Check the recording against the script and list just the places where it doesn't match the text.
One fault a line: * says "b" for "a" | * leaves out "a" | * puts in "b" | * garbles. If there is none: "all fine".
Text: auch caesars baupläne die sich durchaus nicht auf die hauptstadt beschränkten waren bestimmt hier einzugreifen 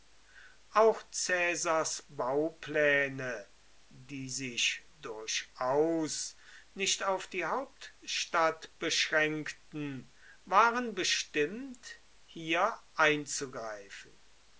all fine